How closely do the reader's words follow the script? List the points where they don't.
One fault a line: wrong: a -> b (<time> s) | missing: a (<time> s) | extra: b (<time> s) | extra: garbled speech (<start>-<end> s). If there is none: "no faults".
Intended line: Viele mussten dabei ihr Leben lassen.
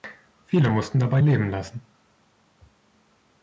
missing: ihr (1.2 s)